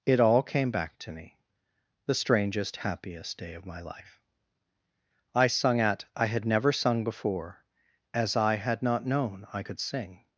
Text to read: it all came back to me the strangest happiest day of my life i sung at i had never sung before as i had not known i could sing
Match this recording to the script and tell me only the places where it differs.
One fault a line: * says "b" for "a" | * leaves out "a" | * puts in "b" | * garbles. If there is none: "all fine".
all fine